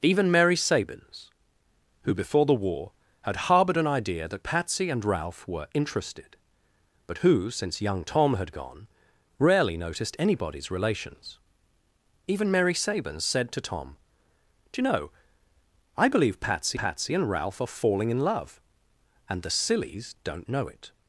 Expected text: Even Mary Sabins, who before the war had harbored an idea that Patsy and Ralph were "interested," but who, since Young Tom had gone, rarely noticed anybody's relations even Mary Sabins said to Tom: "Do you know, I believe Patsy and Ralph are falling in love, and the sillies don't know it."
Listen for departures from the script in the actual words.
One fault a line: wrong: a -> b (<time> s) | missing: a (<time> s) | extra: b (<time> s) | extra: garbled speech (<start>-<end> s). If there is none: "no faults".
extra: Patsy (16.7 s)